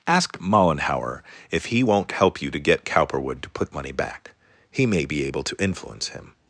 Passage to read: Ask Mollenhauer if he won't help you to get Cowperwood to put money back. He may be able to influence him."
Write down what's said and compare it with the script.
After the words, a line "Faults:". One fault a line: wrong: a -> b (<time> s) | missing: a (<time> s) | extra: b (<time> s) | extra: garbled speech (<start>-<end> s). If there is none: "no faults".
Ask Mollenhauer if he won't help you to get Cowperwood to put money back. He may be able to influence him."
Faults:
no faults